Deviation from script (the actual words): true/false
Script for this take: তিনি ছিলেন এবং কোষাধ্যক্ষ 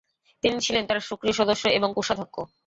true